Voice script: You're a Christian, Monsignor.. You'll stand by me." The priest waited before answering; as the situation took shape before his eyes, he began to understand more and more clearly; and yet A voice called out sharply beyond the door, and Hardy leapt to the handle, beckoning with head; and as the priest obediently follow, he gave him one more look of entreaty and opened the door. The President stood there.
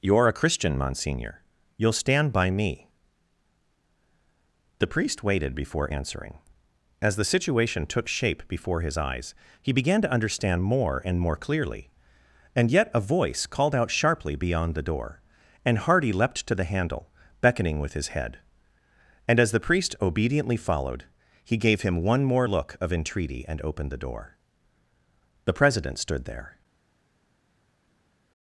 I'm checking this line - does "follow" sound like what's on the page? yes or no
no